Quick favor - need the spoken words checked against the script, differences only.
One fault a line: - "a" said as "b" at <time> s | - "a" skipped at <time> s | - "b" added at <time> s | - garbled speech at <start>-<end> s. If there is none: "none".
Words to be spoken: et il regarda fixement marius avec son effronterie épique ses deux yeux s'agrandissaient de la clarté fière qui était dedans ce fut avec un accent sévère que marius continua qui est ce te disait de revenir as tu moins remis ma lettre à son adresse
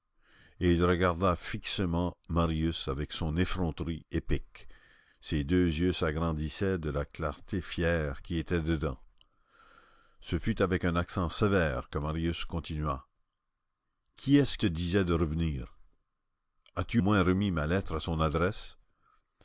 none